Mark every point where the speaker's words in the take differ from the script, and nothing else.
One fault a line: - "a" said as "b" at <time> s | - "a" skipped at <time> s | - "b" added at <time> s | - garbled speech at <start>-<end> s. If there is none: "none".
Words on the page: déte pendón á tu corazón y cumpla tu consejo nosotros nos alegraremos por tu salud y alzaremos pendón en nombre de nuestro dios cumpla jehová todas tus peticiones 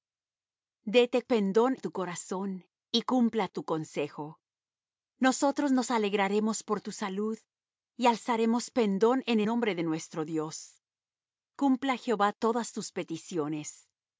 none